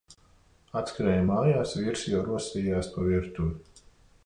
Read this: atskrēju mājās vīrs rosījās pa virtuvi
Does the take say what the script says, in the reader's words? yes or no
no